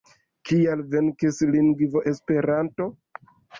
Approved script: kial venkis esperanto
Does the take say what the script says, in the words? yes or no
no